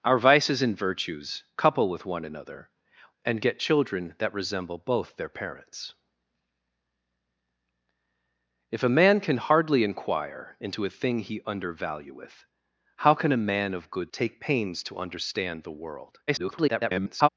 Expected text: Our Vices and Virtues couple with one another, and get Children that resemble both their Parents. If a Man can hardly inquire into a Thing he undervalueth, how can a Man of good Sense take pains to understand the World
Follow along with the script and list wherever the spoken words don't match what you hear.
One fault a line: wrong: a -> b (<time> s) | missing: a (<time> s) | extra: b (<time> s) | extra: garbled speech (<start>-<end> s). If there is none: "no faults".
missing: Sense (14.1 s)
extra: garbled speech (16.3-17.3 s)